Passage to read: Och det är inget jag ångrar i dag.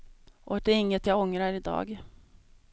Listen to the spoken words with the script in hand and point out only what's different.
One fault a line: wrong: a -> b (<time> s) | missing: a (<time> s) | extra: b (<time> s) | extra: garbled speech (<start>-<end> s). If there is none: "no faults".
no faults